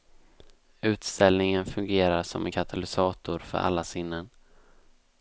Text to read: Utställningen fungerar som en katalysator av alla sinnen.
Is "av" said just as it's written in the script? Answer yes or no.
no